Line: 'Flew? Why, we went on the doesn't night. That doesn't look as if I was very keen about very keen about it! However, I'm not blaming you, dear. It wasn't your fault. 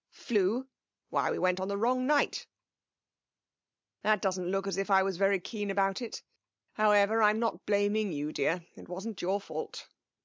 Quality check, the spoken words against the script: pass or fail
fail